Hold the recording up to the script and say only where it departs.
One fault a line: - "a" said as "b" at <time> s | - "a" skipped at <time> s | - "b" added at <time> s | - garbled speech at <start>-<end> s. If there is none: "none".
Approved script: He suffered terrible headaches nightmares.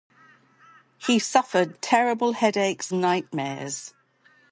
none